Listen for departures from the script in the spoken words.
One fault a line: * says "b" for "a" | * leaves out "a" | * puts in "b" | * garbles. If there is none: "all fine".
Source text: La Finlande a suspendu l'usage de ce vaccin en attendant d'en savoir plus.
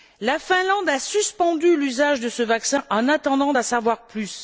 all fine